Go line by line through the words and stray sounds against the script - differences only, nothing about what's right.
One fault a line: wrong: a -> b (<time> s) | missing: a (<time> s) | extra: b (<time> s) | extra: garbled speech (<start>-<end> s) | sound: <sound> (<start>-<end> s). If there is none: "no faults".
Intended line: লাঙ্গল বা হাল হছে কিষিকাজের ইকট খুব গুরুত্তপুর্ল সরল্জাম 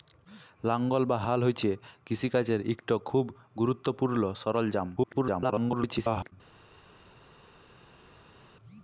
extra: garbled speech (5.0-6.3 s)